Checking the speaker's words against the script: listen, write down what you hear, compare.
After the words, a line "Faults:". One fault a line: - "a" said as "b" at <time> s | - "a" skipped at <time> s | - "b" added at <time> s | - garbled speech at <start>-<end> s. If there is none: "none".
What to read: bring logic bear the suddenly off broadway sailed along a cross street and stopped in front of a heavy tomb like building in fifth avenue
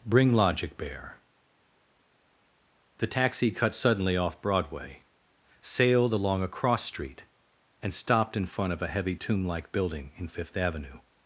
bring logic bear the taxi cut suddenly off broadway sailed along a cross street and stopped in front of a heavy tomb like building in fifth avenue
Faults:
- "taxi cut" added at 3.1 s